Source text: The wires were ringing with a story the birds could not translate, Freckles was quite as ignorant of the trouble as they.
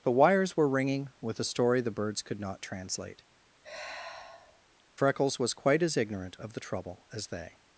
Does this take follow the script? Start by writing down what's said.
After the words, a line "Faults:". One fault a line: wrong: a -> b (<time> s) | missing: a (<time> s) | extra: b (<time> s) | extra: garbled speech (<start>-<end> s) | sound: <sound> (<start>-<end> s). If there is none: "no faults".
The wires were ringing with a story the birds could not translate, Freckles was quite as ignorant of the trouble as they.
Faults:
sound: sigh (3.6-4.6 s)